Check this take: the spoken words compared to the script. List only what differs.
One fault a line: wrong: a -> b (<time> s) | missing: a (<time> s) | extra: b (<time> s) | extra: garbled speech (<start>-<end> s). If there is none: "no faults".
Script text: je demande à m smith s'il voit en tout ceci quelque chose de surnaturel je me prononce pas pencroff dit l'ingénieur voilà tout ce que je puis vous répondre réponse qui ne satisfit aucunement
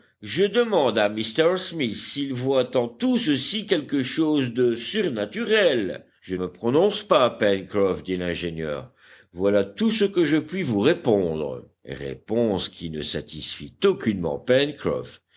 no faults